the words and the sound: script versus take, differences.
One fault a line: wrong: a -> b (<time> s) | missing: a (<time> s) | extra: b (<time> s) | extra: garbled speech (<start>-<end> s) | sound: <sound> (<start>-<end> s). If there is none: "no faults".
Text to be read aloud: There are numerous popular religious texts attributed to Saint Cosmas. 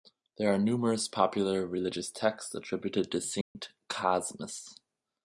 sound: dropout (3.4-3.6 s)